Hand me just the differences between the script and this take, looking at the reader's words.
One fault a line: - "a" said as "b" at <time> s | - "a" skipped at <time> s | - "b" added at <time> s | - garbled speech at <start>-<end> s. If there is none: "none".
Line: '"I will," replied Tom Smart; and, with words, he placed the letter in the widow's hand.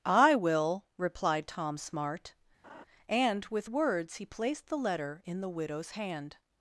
none